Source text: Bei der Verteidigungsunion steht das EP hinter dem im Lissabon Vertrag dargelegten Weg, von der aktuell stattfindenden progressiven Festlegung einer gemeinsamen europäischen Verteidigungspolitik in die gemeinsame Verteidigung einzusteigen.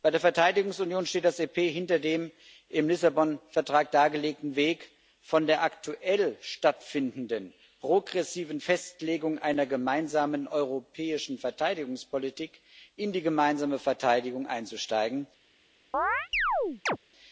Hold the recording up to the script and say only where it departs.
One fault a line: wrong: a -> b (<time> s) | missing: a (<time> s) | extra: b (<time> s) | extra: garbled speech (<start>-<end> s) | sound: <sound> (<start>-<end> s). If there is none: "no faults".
sound: chirp (15.9-17.0 s)